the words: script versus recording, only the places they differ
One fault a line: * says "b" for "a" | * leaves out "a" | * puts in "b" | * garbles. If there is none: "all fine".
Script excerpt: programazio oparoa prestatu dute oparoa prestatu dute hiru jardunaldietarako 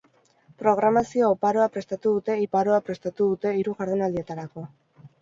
all fine